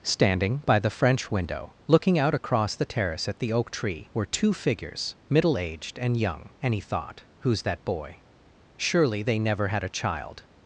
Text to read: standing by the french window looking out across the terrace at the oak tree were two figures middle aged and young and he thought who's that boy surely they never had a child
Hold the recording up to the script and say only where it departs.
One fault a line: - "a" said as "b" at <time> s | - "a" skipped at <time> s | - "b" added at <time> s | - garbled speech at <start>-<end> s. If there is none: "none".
none